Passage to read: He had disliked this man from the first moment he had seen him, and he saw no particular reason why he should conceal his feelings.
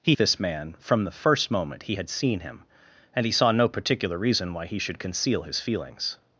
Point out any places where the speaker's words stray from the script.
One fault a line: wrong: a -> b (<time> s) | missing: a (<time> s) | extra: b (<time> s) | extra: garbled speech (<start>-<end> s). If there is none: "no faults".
missing: had disliked (0.1 s)